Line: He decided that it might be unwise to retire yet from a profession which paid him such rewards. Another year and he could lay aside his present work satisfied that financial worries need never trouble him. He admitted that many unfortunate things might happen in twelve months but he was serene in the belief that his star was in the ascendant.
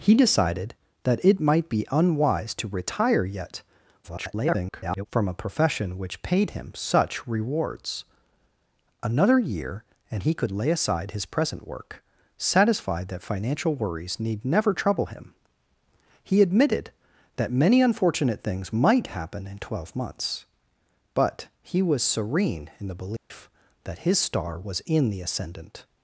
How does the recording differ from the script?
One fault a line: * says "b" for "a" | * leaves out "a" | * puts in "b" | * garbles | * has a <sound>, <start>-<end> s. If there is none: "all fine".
* garbles
* has a dropout, 23.2-23.3 s